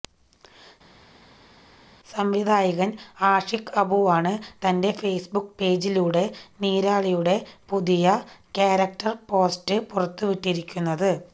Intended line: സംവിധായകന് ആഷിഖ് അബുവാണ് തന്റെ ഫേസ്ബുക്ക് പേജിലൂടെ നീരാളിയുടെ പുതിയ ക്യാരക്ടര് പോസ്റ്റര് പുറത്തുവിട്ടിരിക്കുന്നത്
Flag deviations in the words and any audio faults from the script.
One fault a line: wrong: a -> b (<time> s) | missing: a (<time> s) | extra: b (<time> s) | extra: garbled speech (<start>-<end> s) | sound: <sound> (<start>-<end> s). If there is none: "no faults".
no faults